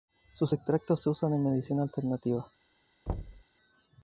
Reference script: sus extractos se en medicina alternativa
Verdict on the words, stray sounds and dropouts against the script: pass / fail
fail